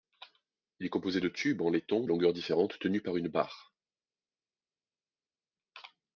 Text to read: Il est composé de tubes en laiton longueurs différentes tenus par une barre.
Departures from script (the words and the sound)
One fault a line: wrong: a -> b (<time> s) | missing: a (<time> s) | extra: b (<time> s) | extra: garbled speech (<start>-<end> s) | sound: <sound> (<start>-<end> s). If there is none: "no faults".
no faults